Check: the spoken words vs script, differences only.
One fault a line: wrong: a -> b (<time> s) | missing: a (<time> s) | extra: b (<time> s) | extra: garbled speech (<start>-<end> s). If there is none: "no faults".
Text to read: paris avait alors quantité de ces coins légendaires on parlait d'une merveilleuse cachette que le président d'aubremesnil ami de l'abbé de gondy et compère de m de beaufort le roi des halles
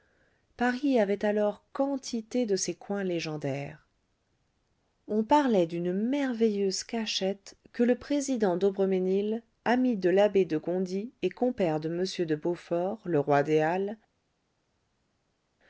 no faults